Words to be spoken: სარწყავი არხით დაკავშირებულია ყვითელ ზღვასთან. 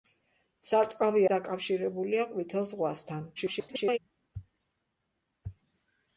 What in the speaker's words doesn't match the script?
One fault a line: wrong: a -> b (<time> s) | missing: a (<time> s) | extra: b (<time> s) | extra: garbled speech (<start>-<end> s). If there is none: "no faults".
missing: არხით (1.2 s)
extra: garbled speech (3.4-4.0 s)